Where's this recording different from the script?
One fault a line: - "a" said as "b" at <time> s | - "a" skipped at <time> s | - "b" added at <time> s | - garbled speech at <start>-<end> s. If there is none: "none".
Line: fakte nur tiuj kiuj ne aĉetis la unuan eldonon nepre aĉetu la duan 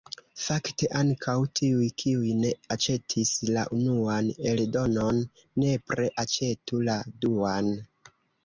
- "nur" said as "ankaŭ" at 1.0 s